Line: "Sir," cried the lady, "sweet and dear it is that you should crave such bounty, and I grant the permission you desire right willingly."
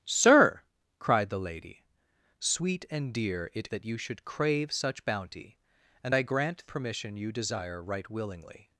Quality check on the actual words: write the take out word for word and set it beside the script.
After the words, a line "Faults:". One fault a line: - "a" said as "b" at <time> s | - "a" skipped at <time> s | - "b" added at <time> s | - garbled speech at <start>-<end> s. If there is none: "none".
"Sir," cried the lady, "sweet and dear it that you should crave such bounty, and I grant permission you desire right willingly."
Faults:
- "is" skipped at 3.7 s
- "the" skipped at 6.6 s